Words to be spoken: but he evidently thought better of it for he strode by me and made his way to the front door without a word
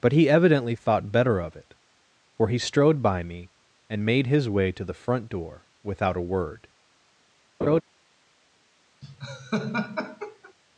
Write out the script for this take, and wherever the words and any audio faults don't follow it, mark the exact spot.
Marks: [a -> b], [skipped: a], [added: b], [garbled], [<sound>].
but he evidently thought better of it for he strode by me and made his way to the front door without a word [laugh] [laugh]